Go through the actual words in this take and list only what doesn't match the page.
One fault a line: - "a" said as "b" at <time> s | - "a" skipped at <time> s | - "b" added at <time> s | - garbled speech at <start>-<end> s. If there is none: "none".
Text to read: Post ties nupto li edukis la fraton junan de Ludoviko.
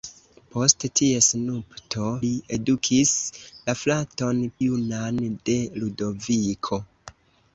none